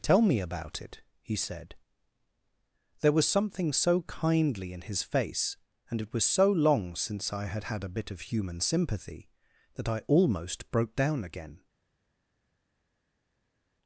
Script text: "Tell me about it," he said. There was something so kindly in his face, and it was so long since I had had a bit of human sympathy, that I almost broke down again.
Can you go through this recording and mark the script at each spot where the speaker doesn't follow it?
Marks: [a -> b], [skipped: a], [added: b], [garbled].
"Tell me about it," he said. There was something so kindly in his face, and it was so long since I had had a bit of human sympathy, that I almost broke down again.